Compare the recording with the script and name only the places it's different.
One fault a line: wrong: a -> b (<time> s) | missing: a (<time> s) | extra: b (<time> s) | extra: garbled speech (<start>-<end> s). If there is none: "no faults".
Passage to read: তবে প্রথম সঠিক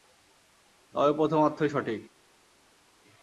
extra: অর্থই (1.4 s)